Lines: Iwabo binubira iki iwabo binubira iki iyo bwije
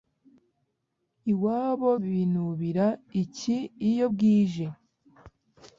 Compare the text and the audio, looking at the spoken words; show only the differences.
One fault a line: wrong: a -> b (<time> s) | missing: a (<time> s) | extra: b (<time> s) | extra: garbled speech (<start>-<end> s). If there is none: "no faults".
missing: iwabo binubira iki (3.6 s)